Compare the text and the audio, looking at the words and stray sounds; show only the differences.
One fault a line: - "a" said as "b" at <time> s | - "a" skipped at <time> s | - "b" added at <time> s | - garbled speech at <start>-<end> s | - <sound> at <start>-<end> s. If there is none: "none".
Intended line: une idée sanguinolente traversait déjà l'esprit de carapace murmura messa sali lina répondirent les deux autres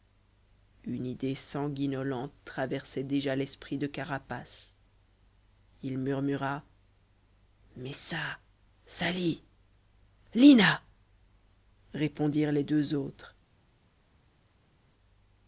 - "il" added at 5.8 s